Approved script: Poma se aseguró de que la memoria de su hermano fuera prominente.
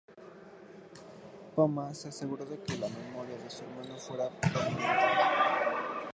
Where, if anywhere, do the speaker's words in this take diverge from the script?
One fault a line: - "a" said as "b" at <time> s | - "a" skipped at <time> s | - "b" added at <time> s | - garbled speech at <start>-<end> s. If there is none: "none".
none